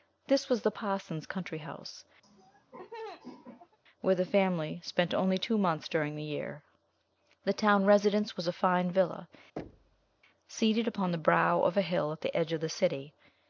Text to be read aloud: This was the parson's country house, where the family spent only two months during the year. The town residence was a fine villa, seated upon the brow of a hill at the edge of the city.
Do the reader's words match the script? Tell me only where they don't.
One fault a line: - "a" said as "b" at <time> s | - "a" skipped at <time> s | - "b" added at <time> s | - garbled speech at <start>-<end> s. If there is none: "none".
none